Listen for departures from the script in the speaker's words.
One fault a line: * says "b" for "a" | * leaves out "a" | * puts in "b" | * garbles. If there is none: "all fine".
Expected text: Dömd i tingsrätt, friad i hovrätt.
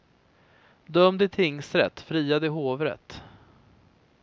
all fine